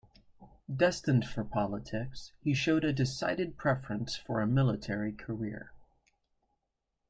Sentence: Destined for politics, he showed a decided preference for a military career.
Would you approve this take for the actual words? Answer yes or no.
yes